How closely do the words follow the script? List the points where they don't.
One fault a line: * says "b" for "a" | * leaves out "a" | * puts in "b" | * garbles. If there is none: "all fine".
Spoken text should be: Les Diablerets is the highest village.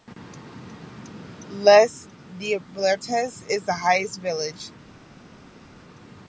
all fine